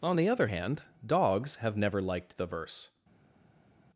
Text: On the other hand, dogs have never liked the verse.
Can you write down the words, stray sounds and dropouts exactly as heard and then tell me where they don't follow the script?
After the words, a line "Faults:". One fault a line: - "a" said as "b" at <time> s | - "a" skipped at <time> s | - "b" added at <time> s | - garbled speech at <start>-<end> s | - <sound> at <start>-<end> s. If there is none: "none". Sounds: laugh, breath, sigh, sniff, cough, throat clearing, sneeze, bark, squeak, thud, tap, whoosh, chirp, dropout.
On the other hand, dogs have never liked the verse.
Faults:
none